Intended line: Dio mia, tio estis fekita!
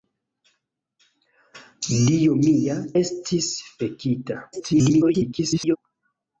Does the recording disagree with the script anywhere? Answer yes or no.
yes